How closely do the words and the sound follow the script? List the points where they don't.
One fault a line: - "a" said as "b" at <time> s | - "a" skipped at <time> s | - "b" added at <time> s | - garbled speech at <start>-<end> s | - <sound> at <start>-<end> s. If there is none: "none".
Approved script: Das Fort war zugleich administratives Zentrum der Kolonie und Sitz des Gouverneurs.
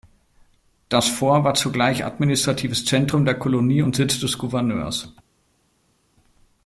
none